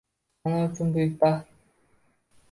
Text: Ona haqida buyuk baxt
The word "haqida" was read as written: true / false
false